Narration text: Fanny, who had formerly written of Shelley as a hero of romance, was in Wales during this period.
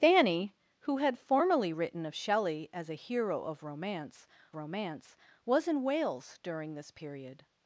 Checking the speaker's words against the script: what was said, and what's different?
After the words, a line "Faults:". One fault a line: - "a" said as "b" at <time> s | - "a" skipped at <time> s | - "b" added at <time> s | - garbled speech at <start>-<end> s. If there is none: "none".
Fanny, who had formerly written of Shelley as a hero of romance romance, was in Wales during this period.
Faults:
- "romance" added at 4.5 s